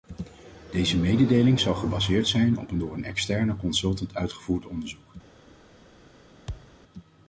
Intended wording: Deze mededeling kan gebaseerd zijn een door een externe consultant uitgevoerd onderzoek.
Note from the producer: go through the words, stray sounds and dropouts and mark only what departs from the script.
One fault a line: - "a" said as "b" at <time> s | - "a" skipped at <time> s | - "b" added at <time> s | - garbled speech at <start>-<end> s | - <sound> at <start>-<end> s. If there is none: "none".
- "kan" said as "zal" at 1.6 s
- "op" added at 2.6 s
- thud at 6.5-6.8 s